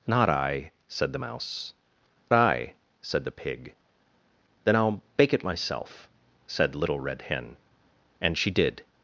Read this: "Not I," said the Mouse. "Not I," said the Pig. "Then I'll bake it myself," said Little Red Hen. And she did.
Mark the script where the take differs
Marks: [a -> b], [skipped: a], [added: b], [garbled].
"Not I," said the Mouse. [skipped: "Not] I," said the Pig. "Then I'll bake it myself," said Little Red Hen. And she did.